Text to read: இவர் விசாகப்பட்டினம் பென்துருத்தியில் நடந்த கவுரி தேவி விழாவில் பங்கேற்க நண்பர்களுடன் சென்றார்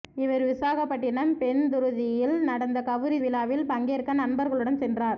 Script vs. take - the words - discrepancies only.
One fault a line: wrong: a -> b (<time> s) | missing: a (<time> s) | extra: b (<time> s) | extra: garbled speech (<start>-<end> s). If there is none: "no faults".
missing: தேவி (3.2 s)